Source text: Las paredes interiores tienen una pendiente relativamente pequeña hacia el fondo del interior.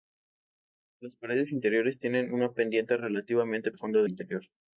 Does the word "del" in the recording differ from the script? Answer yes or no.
yes